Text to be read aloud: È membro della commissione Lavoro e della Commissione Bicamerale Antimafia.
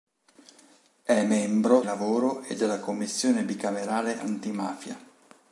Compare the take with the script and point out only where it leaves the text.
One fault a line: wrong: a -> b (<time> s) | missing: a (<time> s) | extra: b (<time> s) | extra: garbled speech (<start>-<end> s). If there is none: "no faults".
missing: della commissione (1.8 s)